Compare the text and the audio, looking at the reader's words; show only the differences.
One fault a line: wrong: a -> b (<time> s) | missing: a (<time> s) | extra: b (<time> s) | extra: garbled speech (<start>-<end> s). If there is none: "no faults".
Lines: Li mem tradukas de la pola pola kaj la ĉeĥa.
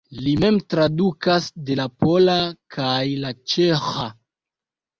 missing: pola (2.4 s)